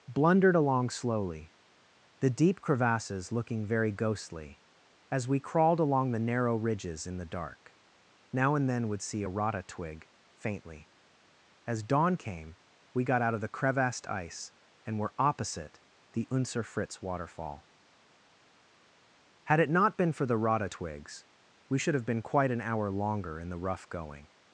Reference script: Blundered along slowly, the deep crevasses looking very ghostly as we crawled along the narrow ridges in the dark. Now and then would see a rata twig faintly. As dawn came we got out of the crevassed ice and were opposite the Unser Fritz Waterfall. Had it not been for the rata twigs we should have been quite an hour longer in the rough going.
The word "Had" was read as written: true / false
true